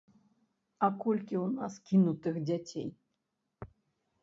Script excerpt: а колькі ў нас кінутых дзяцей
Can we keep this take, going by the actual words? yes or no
yes